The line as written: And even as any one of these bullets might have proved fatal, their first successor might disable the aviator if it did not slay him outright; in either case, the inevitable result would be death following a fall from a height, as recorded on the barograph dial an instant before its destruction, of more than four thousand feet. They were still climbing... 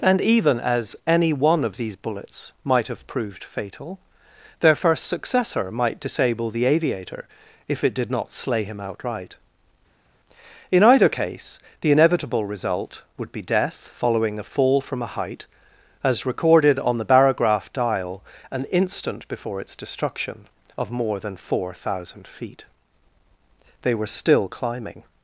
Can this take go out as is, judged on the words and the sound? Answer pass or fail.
pass